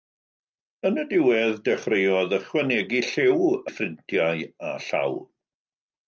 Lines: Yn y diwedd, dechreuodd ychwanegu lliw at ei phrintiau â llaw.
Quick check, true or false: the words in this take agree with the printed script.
false